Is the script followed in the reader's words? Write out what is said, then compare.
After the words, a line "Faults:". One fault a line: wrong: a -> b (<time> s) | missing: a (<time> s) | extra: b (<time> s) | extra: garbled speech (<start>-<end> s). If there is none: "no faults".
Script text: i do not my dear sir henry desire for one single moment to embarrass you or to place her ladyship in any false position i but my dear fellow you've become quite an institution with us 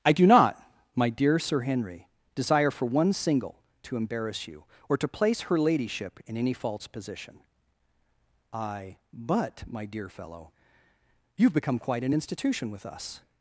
i do not my dear sir henry desire for one single to embarrass you or to place her ladyship in any false position i but my dear fellow you've become quite an institution with us
Faults:
missing: moment (3.6 s)